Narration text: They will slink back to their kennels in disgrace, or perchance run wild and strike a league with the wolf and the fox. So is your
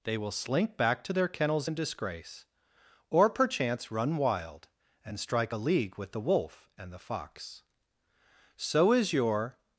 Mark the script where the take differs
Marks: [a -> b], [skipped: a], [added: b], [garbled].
They will slink back to their kennels in disgrace, or perchance run wild and strike a league with the wolf and the fox. So is your